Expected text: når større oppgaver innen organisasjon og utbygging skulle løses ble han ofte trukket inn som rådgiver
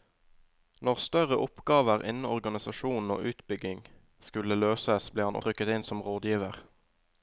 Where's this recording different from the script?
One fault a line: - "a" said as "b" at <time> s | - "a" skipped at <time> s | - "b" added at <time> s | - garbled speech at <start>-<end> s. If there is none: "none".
- "ofte" skipped at 5.4 s